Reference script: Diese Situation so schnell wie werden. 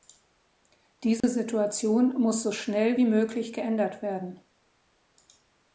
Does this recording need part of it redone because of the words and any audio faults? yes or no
yes